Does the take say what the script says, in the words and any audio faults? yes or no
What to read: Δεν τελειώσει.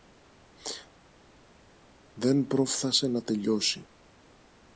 no